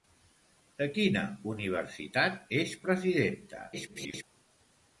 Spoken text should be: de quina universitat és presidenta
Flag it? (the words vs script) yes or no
yes